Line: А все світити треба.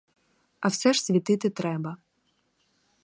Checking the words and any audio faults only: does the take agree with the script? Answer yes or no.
no